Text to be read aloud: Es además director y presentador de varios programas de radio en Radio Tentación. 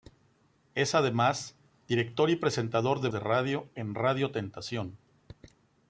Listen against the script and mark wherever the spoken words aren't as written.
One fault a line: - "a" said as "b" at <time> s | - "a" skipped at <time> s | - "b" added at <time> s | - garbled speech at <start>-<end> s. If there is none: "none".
- "varios programas" skipped at 3.1 s